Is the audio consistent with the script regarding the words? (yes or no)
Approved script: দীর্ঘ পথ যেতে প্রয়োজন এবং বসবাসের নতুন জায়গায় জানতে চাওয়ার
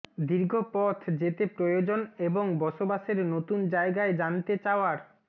yes